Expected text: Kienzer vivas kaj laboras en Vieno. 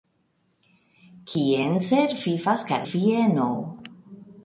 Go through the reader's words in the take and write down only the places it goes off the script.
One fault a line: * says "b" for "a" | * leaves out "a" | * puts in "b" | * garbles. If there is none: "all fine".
* leaves out "laboras en"